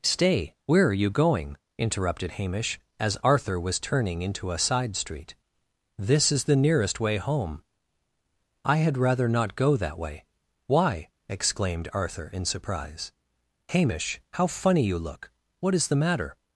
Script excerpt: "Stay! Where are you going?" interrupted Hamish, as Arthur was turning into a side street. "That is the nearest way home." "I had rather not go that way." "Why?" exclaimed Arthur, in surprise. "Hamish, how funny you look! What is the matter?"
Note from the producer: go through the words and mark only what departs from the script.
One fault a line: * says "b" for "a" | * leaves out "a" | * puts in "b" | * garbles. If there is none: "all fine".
* says "This" for "That"